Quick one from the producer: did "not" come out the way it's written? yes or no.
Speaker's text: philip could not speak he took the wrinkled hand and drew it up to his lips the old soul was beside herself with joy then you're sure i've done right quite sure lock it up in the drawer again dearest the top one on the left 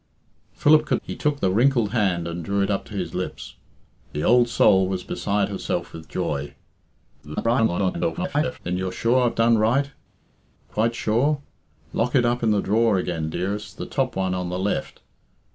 no